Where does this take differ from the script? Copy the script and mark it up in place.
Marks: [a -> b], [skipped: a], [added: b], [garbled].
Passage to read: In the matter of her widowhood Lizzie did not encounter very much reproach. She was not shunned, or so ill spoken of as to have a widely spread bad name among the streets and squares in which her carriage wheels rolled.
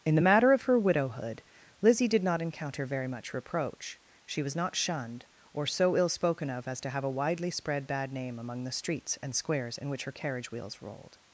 In the matter of her widowhood Lizzie did not encounter very much reproach. She was not shunned, or so ill spoken of as to have a widely spread bad name among the streets and squares in which her carriage wheels rolled.